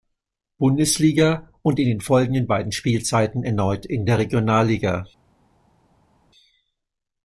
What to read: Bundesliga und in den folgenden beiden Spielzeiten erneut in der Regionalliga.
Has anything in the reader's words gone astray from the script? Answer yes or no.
no